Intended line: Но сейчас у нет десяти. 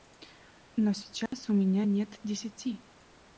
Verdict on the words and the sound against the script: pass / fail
fail